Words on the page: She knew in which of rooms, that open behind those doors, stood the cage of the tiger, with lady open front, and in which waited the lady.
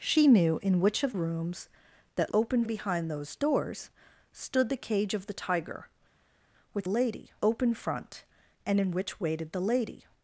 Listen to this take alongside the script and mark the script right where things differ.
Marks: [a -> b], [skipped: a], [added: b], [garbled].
She knew in which of rooms, that open behind those doors, stood the cage of the tiger, with lady open front, and in which waited the lady.